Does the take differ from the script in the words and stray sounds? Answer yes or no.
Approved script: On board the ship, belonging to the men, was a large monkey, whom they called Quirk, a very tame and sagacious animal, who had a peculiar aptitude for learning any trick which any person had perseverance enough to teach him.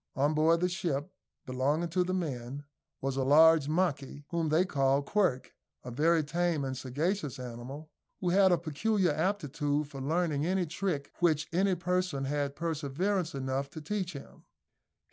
no